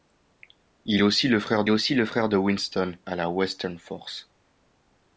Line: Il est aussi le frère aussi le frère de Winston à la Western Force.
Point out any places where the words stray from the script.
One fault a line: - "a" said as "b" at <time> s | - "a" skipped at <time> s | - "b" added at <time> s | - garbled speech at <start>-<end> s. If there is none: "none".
none